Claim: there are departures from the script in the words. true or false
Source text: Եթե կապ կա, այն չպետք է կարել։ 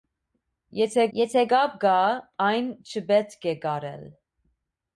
true